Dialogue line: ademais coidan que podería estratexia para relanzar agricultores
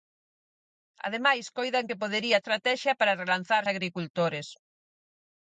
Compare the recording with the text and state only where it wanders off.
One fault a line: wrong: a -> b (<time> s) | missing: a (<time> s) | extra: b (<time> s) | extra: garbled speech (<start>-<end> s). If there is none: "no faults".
no faults